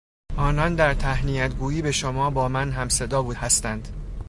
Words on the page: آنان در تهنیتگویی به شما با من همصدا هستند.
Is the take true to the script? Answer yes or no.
yes